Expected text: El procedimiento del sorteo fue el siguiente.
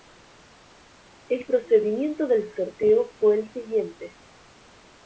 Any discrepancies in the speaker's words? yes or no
no